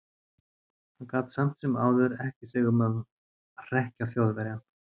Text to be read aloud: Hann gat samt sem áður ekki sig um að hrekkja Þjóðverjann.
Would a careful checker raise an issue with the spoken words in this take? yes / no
no